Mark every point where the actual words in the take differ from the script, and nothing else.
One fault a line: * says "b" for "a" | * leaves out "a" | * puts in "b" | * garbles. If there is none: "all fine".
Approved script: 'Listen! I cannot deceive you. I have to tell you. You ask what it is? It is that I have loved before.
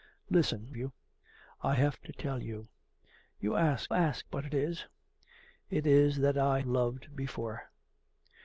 * leaves out "I cannot deceive"
* puts in "ask"
* leaves out "have"